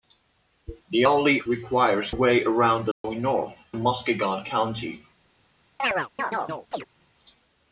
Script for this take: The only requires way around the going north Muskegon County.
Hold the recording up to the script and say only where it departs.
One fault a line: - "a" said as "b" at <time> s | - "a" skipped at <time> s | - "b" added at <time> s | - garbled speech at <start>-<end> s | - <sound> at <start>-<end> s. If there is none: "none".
- dropout at 2.9-3.0 s
- chirp at 5.8-6.9 s